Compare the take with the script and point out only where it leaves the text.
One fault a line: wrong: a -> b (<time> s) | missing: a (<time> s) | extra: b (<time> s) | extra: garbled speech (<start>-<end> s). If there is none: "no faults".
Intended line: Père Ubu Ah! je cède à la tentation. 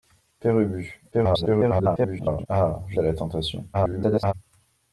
extra: garbled speech (1.1-2.5 s)
missing: cède (3.0 s)
extra: garbled speech (3.7-4.3 s)